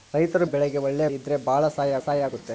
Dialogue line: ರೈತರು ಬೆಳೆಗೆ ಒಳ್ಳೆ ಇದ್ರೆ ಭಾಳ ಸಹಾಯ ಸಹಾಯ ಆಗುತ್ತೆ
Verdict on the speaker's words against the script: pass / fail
pass